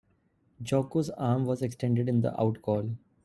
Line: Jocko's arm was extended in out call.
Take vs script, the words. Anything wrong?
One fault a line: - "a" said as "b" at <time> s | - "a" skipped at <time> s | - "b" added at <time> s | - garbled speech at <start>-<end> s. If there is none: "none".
- "the" added at 2.2 s